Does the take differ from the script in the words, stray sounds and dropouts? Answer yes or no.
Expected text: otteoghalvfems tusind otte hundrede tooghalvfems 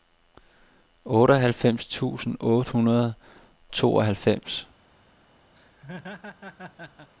yes